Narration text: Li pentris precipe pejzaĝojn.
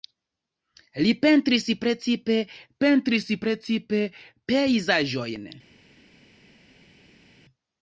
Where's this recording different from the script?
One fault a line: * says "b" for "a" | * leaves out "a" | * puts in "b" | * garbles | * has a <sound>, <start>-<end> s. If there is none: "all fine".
* puts in "pentris precipe"